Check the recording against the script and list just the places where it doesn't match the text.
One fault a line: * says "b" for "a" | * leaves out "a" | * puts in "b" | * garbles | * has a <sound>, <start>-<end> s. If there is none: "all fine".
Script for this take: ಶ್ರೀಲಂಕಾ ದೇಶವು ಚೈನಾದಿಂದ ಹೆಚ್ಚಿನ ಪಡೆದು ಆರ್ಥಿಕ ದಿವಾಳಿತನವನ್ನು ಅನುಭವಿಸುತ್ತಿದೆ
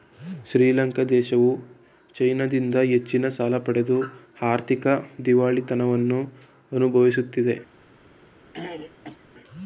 * puts in "ಸಾಲ"
* has a throat clearing, 8.5-9.2 s